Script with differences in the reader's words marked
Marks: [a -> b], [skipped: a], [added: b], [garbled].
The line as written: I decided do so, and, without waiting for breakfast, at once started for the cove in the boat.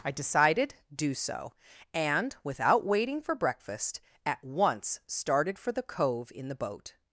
I decided do so, and, without waiting for breakfast, at once started for the cove in the boat.